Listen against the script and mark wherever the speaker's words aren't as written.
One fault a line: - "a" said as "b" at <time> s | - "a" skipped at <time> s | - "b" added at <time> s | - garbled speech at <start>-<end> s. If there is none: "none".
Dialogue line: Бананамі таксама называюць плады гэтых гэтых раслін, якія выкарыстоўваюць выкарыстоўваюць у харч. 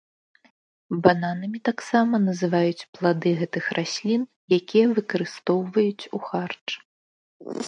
- "гэтых" skipped at 3.6 s
- "выкарыстоўваюць" skipped at 6.1 s